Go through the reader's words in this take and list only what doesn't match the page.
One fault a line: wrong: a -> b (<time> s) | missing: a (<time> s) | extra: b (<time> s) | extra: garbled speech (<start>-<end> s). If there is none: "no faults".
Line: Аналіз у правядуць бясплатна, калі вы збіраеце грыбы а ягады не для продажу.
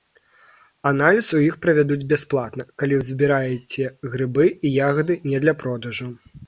extra: іх (1.5 s)
wrong: а -> і (4.5 s)